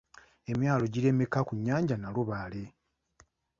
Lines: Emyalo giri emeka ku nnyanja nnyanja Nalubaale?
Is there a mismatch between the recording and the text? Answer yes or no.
yes